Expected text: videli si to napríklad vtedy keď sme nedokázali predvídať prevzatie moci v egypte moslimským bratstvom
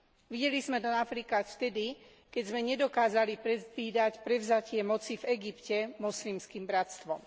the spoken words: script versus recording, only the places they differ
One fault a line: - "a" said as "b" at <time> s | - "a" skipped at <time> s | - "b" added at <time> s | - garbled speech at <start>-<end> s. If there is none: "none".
- "si" said as "sme" at 0.6 s